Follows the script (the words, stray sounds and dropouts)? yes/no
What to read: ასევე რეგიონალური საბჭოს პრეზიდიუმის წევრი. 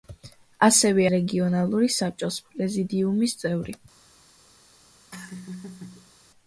no